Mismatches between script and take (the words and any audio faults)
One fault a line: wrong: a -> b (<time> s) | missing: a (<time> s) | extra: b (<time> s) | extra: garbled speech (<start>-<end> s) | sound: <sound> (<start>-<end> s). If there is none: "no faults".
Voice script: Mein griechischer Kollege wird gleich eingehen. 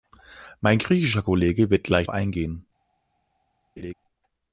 sound: laugh (3.8-3.9 s)